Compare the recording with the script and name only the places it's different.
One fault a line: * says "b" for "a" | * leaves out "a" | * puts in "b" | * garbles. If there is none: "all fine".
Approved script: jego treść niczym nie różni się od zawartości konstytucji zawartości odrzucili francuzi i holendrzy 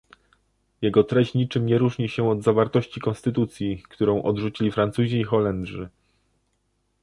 * says "którą" for "zawartości"